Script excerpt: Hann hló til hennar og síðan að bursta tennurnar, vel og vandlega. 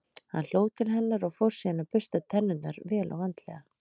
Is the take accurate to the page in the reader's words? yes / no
no